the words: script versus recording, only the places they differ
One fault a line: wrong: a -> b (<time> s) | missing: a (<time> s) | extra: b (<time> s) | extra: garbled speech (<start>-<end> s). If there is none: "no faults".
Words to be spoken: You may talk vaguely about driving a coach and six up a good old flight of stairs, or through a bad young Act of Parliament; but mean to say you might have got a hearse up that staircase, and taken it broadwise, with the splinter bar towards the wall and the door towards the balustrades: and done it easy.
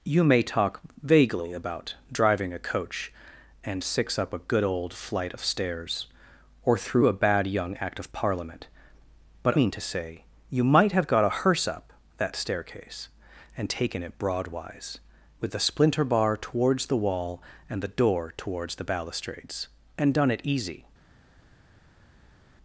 no faults